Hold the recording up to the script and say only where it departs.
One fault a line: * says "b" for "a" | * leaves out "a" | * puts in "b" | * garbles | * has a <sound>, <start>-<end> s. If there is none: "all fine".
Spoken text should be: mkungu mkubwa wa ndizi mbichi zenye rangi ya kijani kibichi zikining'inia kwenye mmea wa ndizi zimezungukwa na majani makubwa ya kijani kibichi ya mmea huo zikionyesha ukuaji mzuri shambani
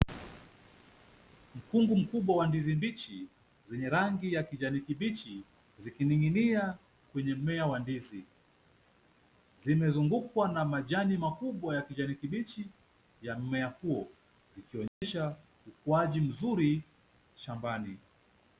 * has a dropout, 14.9-15.0 s